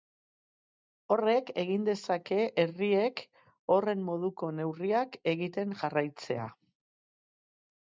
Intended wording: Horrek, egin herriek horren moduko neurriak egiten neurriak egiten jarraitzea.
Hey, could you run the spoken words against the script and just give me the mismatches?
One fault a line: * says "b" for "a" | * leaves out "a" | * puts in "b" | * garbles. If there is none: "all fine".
* puts in "dezake"
* leaves out "neurriak egiten"